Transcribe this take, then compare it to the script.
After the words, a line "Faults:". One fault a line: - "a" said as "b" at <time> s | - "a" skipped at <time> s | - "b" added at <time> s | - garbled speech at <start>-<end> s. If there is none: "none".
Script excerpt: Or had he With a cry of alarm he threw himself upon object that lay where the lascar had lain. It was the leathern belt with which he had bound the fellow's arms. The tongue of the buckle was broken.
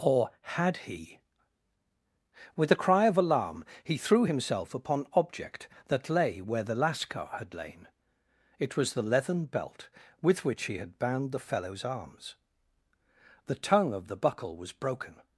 Or had he With a cry of alarm he threw himself upon object that lay where the lascar had lain. It was the leathern belt with which he had bound the fellow's arms. The tongue of the buckle was broken.
Faults:
none